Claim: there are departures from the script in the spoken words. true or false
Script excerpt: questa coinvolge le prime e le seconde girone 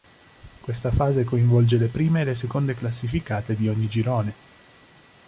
true